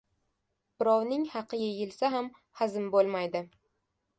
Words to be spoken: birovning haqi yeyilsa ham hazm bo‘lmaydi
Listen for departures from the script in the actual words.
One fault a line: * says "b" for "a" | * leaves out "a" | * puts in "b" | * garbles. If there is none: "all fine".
all fine